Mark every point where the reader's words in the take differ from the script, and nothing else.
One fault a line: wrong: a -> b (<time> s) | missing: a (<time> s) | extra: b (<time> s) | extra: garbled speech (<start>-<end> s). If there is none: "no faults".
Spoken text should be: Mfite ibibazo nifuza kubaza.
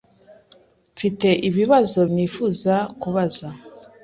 no faults